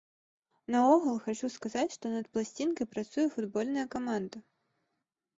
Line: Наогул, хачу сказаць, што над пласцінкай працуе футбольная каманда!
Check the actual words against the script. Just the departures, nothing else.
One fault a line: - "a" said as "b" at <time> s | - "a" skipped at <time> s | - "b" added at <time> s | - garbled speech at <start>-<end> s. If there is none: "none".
none